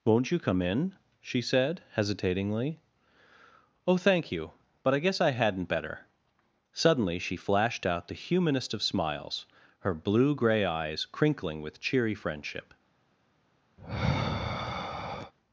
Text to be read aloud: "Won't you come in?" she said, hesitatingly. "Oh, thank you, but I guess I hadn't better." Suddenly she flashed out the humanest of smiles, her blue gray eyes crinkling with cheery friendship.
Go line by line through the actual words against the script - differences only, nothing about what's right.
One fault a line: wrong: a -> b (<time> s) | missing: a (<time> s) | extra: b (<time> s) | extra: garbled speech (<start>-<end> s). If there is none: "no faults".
no faults